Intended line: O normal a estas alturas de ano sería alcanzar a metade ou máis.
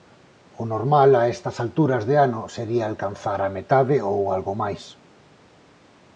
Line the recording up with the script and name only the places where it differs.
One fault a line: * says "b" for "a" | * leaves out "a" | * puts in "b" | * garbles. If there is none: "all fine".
* puts in "algo"